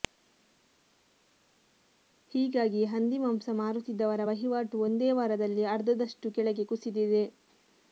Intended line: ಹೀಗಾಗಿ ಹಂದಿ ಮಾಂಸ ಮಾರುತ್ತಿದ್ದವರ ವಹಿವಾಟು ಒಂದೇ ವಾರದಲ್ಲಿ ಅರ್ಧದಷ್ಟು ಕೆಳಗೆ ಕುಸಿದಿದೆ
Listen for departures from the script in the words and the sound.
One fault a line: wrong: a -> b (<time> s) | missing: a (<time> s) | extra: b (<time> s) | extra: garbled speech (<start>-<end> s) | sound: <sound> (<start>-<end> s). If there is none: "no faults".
no faults